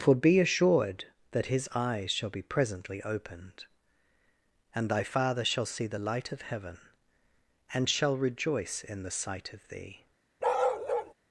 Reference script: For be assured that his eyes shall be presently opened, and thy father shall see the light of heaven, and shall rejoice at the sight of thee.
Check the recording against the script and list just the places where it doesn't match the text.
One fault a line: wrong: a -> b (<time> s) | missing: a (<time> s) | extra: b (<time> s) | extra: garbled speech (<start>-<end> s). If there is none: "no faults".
wrong: at -> in (8.8 s)